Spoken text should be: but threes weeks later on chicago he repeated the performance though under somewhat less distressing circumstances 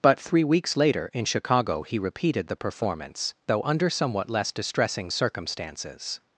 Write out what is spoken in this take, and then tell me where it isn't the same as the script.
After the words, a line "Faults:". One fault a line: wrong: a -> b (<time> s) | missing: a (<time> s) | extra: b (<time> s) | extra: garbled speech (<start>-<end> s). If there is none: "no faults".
but three weeks later in chicago he repeated the performance though under somewhat less distressing circumstances
Faults:
wrong: threes -> three (0.2 s)
wrong: on -> in (1.1 s)